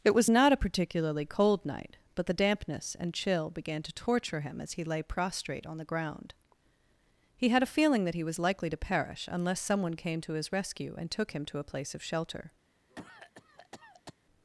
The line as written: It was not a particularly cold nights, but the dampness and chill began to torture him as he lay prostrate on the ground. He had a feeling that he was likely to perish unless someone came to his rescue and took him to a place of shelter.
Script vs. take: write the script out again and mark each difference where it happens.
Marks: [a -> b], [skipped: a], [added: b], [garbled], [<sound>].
It was not a particularly cold [nights, -> night] but the dampness and chill began to torture him as he lay prostrate on the ground. He had a feeling that he was likely to perish unless someone came to his rescue and took him to a place of shelter. [cough]